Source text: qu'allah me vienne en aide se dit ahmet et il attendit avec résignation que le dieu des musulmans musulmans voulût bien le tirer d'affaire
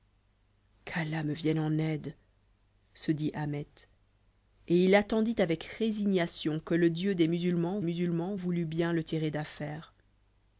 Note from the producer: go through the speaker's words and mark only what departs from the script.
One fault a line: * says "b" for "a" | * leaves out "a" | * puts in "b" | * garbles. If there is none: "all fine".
all fine